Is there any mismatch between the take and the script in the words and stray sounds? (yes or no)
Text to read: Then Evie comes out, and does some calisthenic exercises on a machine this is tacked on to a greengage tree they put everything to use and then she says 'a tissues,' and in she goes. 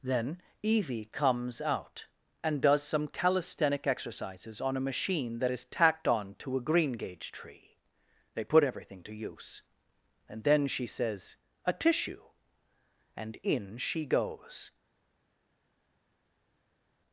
yes